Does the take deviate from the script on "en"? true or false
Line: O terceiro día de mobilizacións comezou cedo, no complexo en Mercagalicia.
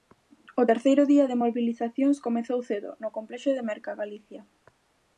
true